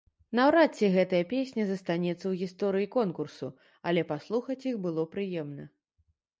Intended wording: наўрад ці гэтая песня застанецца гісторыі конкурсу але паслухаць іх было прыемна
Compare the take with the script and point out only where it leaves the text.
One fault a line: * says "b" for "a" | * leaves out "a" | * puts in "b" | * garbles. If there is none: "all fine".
* puts in "ў"